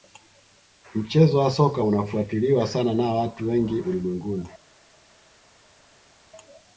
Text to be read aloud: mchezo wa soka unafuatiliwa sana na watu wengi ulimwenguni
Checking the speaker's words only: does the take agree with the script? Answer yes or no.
yes